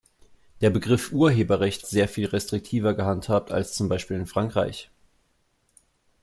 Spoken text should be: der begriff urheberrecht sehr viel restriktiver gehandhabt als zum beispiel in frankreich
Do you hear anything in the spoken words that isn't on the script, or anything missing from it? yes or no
no